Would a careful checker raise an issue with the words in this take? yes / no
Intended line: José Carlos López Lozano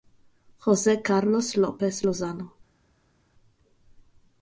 no